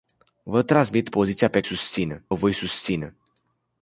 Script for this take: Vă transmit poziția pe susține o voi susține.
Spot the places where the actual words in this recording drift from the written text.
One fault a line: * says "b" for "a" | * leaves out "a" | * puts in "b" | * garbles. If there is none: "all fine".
all fine